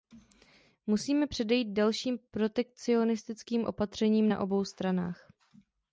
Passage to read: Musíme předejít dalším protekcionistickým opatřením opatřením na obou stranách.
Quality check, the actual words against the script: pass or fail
fail